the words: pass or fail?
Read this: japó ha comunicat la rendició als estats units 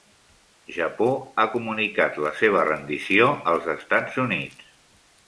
fail